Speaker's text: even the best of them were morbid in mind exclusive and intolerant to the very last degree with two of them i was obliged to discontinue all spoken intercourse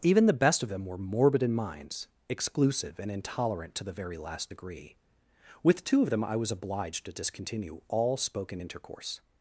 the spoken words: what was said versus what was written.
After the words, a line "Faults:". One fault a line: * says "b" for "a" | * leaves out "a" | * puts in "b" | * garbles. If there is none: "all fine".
even the best of them were morbid in minds exclusive and intolerant to the very last degree with two of them i was obliged to discontinue all spoken intercourse
Faults:
* says "minds" for "mind"